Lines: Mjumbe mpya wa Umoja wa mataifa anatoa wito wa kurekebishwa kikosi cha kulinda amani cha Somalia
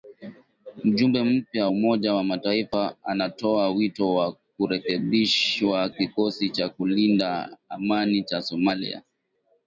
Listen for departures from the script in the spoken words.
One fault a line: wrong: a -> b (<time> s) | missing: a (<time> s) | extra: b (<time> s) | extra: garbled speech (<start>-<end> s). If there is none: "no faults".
missing: wa (1.7 s)